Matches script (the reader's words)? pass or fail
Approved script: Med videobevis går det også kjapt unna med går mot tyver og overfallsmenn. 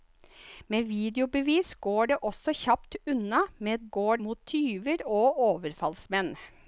pass